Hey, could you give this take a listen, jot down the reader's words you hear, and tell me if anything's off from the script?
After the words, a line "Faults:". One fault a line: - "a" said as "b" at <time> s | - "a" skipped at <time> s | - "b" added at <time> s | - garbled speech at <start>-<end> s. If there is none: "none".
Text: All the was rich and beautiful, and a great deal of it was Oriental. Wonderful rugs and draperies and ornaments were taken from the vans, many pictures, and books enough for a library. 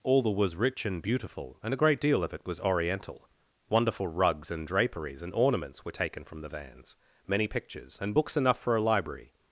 All the was rich and beautiful, and a great deal of it was Oriental. Wonderful rugs and draperies and ornaments were taken from the vans, many pictures, and books enough for a library.
Faults:
none